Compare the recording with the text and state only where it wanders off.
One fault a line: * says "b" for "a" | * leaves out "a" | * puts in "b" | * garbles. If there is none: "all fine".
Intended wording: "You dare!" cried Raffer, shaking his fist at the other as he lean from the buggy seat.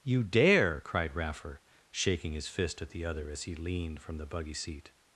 * says "leaned" for "lean"